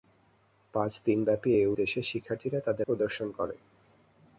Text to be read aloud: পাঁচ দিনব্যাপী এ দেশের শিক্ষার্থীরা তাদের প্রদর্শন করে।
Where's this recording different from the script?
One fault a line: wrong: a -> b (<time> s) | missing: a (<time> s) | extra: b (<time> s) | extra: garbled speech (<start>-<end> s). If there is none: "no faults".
no faults